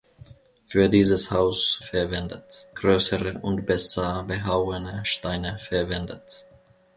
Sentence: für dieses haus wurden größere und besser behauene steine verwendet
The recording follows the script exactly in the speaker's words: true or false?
false